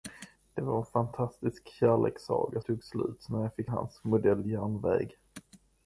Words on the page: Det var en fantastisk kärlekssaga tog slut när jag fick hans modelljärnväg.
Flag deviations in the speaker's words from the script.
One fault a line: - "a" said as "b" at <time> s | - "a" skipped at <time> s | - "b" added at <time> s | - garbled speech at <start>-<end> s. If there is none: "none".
none